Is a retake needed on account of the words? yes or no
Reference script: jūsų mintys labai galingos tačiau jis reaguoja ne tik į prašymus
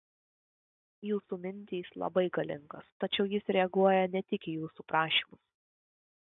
yes